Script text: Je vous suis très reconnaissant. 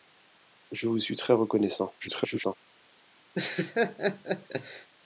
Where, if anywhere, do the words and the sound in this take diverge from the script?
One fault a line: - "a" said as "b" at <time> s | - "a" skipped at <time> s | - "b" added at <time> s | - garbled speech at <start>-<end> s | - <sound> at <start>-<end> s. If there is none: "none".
- garbled speech at 2.0-2.6 s
- laugh at 3.3-4.9 s